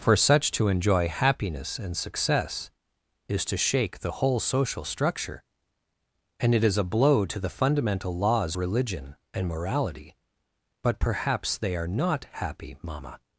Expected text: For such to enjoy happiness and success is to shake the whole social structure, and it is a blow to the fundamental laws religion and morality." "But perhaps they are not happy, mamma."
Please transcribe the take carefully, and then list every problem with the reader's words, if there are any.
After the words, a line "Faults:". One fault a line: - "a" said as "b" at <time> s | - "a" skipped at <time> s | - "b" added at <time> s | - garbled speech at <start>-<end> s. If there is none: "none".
For such to enjoy happiness and success is to shake the whole social structure, and it is a blow to the fundamental laws religion and morality." "But perhaps they are not happy, mamma."
Faults:
none